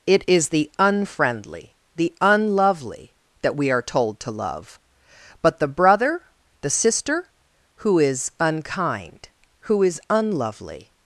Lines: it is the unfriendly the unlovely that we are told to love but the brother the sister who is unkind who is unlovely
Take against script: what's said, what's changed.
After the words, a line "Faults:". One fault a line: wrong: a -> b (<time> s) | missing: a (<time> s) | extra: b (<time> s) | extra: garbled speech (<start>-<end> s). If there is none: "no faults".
it is the unfriendly the unlovely that we are told to love but the brother the sister who is unkind who is unlovely
Faults:
no faults